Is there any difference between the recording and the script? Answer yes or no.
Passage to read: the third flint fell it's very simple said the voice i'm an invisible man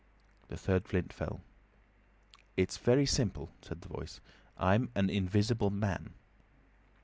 no